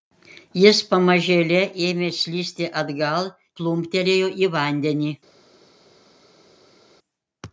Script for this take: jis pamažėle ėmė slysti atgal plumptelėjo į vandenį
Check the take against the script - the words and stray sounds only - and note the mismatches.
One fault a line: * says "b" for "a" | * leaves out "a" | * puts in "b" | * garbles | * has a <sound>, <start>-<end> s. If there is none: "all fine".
all fine